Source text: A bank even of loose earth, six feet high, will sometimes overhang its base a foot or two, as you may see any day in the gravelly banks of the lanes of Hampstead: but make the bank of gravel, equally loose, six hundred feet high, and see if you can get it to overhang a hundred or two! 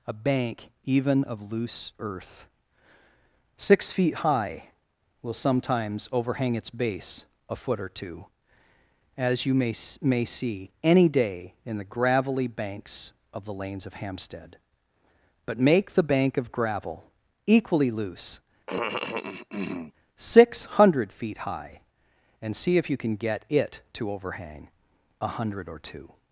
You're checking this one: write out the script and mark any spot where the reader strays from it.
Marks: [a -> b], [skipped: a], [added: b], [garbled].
A bank even of loose earth, six feet high, will sometimes overhang its base a foot or two, as you may [added: may] see any day in the gravelly banks of the lanes of Hampstead: but make the bank of gravel, equally loose, six hundred feet high, and see if you can get it to overhang a hundred or two!